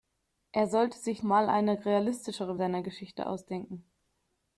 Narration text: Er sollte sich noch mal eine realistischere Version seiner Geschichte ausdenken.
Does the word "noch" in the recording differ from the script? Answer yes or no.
yes